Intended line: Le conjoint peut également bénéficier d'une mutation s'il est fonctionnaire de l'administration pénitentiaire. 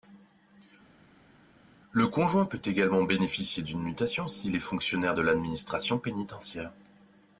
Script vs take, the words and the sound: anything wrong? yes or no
no